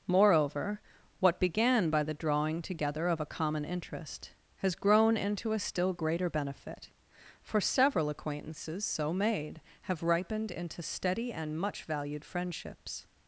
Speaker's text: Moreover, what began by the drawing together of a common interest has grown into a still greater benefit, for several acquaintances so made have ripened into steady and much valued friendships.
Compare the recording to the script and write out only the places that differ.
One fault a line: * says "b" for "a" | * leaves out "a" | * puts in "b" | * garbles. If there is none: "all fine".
all fine